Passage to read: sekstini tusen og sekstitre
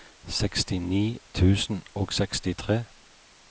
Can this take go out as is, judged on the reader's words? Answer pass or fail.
pass